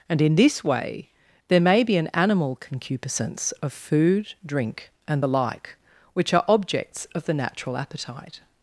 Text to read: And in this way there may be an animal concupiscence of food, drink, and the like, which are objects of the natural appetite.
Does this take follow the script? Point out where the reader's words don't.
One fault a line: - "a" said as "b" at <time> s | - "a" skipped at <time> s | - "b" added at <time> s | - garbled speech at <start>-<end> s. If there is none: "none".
none